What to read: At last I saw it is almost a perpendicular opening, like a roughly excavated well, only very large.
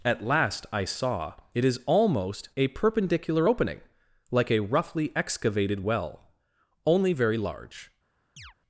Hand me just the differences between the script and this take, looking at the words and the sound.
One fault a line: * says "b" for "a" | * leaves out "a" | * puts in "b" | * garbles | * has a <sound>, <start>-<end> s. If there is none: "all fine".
* has a chirp, 8.4-8.5 s